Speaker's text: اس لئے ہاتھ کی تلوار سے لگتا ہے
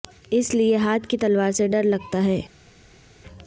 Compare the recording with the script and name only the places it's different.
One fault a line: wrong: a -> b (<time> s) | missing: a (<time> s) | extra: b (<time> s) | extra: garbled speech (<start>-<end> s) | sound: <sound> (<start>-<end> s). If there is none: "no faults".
extra: ڈر (1.7 s)